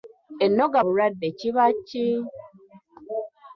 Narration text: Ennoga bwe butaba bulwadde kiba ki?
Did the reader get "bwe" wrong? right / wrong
wrong